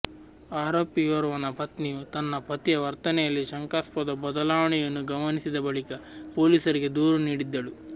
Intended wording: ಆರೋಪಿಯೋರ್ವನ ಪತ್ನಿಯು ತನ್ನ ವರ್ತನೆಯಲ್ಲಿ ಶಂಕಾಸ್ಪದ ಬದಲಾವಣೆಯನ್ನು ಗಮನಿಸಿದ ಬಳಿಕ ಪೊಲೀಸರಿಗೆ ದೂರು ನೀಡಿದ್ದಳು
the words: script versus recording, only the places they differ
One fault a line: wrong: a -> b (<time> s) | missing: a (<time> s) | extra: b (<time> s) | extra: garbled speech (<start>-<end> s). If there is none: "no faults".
extra: ಪತಿಯ (2.5 s)